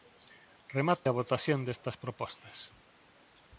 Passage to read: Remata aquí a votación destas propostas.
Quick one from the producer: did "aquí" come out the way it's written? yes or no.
no